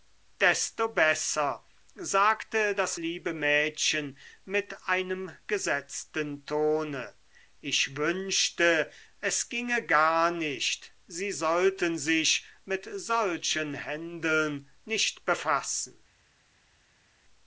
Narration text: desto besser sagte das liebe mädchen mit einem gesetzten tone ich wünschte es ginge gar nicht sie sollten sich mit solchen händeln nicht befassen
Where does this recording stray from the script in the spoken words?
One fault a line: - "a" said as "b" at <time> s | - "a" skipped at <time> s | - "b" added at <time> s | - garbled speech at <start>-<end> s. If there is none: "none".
none